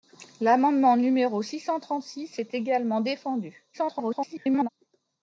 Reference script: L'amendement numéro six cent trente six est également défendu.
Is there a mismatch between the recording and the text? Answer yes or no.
yes